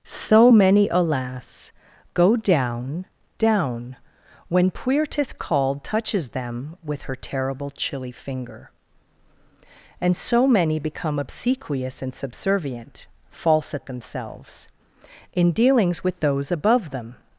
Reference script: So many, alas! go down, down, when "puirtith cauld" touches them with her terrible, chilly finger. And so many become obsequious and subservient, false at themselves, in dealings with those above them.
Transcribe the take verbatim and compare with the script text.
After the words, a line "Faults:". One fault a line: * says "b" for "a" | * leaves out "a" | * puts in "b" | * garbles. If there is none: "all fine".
So many, alas! go down, down, when "puirtith cauld" touches them with her terrible, chilly finger. And so many become obsequious and subservient, false at themselves, in dealings with those above them.
Faults:
all fine